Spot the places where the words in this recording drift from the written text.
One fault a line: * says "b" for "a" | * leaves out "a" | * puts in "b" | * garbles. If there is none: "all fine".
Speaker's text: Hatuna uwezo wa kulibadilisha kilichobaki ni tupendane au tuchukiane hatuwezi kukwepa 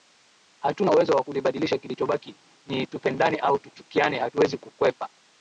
all fine